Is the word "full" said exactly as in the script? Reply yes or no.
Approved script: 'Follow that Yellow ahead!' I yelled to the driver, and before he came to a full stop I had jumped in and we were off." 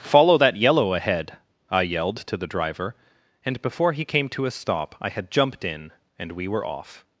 no